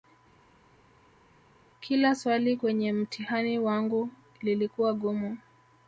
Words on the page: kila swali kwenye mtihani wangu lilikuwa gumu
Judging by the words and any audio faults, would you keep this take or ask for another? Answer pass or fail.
pass